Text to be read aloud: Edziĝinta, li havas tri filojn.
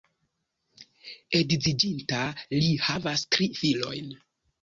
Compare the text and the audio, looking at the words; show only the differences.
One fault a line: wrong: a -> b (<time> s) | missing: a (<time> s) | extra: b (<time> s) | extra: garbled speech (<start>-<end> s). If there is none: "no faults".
no faults